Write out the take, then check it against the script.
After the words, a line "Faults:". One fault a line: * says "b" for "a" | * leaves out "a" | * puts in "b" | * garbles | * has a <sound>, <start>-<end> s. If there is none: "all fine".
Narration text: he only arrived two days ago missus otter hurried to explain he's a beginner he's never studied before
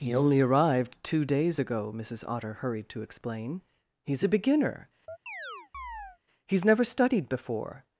he only arrived two days ago missus otter hurried to explain he's a beginner he's never studied before
Faults:
* has a chirp, 5.1-6.2 s